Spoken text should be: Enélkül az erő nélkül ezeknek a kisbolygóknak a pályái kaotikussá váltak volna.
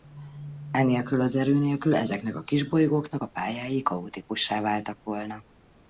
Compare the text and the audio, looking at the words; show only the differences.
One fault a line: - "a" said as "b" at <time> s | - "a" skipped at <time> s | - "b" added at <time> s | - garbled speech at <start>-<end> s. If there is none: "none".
none